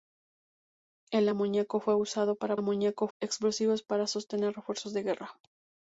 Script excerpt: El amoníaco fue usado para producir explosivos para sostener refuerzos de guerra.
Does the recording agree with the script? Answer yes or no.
no